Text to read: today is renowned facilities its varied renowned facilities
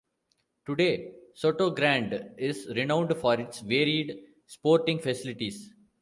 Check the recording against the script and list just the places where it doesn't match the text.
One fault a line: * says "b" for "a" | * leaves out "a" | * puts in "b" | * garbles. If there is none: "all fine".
* puts in "sotogrande"
* says "for" for "facilities"
* says "sporting" for "renowned"